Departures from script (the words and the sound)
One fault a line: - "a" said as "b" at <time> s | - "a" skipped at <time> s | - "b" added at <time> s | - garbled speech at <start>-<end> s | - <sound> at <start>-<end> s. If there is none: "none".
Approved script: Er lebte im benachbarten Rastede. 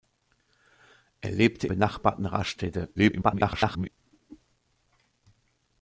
- "im" skipped at 1.7 s
- garbled speech at 3.0-3.9 s